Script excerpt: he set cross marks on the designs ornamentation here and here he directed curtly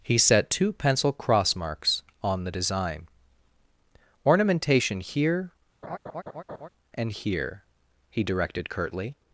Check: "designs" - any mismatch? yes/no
yes